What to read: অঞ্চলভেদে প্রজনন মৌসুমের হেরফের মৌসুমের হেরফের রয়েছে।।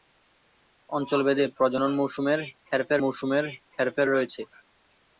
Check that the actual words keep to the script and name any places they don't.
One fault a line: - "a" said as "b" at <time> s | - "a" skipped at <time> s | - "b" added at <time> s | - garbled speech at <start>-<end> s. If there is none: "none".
none